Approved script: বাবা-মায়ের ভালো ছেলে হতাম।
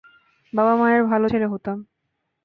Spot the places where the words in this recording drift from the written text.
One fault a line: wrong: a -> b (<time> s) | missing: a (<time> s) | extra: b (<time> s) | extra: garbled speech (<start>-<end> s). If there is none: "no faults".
no faults